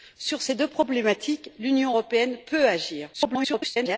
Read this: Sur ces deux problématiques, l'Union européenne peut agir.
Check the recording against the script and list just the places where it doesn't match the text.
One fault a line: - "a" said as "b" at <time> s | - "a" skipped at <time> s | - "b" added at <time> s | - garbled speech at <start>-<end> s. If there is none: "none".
- garbled speech at 3.1-4.0 s